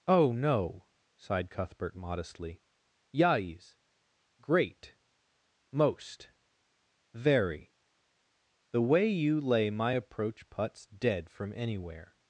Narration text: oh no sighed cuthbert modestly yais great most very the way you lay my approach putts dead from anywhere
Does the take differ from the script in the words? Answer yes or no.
no